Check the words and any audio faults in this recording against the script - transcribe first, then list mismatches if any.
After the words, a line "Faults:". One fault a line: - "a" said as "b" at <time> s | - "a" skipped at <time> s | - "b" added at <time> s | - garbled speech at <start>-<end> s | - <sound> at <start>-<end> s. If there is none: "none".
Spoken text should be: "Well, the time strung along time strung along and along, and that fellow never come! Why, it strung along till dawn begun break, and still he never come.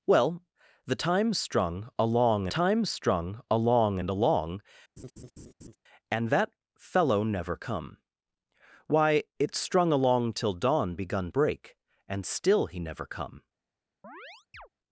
"Well, the time strung along time strung along and along, and that fellow never come! Why, it strung along till dawn begun break, and still he never come.
Faults:
- laugh at 5.0-5.8 s
- chirp at 14.0-14.7 s